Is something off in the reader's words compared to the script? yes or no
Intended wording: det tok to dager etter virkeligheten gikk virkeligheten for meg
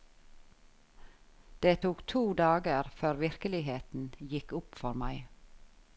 yes